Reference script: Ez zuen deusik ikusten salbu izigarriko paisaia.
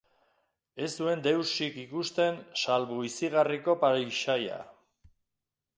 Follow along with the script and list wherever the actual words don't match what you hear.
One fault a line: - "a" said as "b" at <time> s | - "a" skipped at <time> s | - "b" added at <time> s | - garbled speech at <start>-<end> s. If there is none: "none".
none